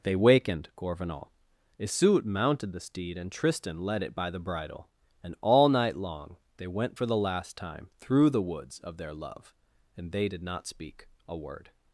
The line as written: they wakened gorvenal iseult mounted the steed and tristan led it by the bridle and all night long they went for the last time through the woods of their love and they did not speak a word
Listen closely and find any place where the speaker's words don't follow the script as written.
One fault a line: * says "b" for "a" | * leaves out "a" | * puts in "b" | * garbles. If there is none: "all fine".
all fine